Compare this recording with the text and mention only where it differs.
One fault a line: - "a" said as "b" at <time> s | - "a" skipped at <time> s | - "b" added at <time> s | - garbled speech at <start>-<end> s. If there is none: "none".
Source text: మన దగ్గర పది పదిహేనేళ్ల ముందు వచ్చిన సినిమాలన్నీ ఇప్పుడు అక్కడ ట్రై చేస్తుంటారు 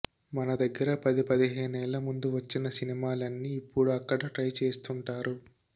none